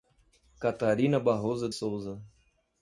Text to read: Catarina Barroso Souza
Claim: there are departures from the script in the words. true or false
false